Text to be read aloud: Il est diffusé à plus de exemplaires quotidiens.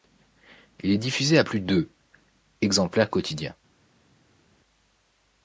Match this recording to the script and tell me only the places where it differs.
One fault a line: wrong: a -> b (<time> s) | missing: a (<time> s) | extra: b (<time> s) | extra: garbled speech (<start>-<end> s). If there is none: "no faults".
no faults